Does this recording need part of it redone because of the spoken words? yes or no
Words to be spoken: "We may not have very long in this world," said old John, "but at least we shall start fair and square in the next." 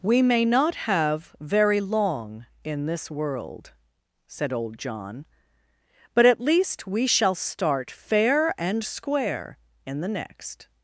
no